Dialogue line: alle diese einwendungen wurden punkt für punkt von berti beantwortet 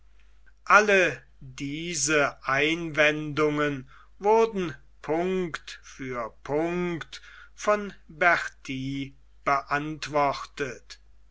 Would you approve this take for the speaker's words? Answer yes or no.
yes